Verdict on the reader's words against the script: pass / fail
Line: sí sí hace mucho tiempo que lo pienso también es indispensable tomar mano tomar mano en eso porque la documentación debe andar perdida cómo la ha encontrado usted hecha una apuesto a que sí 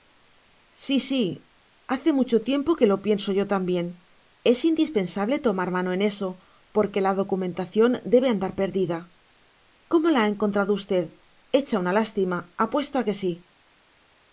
fail